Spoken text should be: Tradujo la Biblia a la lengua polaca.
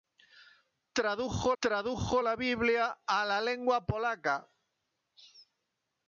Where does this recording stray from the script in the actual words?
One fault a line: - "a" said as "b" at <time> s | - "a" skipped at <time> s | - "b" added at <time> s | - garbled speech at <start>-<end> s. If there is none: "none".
- "tradujo" added at 1.6 s